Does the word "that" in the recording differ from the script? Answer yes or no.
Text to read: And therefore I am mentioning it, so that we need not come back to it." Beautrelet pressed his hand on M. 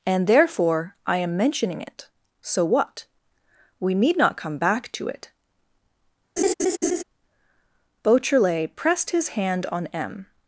yes